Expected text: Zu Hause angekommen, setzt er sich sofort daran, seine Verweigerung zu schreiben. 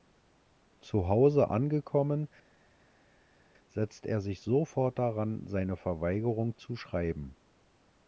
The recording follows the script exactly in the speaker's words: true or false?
true